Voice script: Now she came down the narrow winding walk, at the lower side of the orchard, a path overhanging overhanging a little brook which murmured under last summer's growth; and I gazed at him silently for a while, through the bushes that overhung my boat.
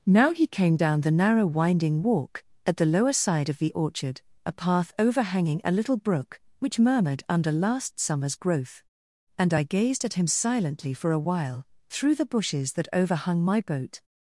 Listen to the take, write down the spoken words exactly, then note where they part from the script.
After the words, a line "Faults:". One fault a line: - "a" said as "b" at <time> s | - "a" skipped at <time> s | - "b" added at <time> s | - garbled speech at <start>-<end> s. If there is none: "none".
Now he came down the narrow winding walk, at the lower side of the orchard, a path overhanging a little brook which murmured under last summer's growth; and I gazed at him silently for a while, through the bushes that overhung my boat.
Faults:
- "she" said as "he" at 0.3 s
- "overhanging" skipped at 5.6 s